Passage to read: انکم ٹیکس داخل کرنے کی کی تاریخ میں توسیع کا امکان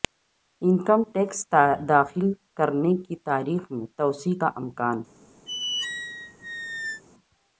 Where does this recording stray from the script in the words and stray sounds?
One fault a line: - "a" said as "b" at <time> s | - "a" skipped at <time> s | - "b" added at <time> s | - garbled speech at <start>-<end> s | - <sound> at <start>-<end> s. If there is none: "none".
- "کی" skipped at 3.1 s
- squeak at 5.5-7.0 s